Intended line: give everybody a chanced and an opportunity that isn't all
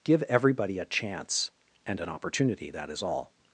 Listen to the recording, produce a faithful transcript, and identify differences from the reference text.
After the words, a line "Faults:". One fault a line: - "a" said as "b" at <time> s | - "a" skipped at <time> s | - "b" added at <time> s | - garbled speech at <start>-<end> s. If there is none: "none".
give everybody a chance and an opportunity that is all
Faults:
- "chanced" said as "chance" at 0.8 s
- "isn't" said as "is" at 2.9 s